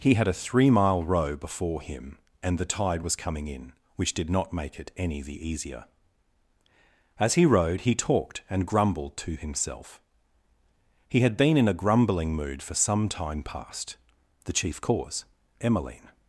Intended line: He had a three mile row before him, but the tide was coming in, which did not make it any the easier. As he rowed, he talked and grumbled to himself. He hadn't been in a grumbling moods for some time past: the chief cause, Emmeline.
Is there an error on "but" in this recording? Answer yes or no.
yes